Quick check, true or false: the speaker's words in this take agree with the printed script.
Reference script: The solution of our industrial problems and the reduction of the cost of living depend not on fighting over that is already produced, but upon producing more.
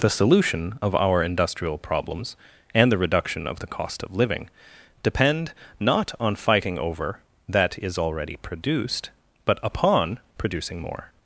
true